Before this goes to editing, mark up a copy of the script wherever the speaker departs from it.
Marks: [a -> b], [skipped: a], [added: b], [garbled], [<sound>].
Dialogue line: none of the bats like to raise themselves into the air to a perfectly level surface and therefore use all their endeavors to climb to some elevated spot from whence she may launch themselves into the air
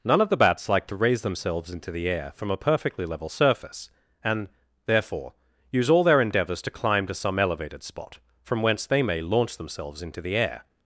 none of the bats like to raise themselves into the air [to -> from] a perfectly level surface and therefore use all their endeavors to climb to some elevated spot from whence [she -> they] may launch themselves into the air